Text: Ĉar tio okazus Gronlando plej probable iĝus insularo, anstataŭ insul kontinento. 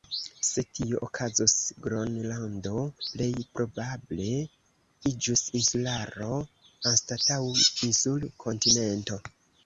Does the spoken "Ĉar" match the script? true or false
false